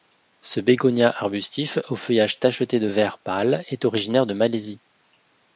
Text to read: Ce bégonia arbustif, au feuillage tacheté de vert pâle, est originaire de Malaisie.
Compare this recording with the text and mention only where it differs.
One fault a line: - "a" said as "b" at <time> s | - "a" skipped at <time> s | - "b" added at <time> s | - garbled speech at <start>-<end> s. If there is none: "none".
none